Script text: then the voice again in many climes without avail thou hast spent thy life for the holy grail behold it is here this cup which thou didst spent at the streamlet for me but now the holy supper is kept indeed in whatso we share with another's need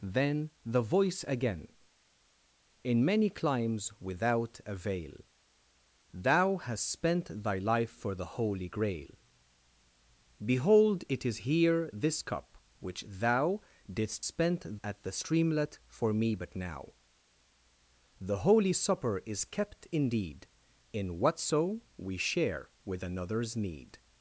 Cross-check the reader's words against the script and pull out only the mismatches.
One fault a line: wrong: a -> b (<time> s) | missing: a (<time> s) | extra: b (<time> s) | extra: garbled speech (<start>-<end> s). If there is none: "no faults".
no faults